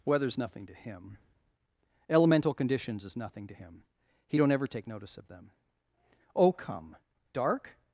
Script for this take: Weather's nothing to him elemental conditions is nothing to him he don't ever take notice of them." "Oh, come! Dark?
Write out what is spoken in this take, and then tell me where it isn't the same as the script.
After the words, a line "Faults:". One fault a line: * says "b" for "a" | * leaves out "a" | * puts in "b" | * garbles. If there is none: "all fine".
Weather's nothing to him elemental conditions is nothing to him he don't ever take notice of them." "Oh, come! Dark?
Faults:
all fine